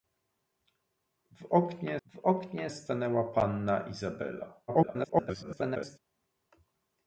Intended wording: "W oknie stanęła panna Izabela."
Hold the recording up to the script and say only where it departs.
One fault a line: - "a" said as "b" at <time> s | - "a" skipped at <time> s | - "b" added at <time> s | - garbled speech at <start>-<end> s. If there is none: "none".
- "w oknie" added at 2.1 s
- garbled speech at 4.7-6.0 s